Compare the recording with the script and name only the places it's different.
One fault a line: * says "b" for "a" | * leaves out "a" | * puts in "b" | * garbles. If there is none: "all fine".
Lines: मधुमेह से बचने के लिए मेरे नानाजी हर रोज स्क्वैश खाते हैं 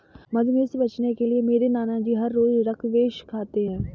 all fine